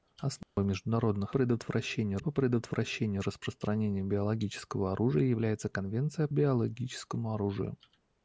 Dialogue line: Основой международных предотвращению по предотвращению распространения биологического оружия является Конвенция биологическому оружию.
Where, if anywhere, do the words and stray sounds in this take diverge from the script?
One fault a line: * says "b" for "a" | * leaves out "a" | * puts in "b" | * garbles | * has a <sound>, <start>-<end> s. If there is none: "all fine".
* has a dropout, 0.4-0.6 s